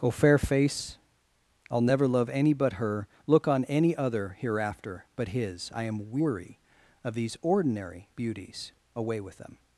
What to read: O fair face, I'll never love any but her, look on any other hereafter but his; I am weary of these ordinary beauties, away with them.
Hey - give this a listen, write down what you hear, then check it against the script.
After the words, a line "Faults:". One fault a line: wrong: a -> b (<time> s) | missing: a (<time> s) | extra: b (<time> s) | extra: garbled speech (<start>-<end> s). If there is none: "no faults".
O fair face, I'll never love any but her, look on any other hereafter but his; I am weary of these ordinary beauties, away with them.
Faults:
no faults